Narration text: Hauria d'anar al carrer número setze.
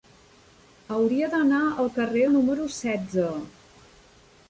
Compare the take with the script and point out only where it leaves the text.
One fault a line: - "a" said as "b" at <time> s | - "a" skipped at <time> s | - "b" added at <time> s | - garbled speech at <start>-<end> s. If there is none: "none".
none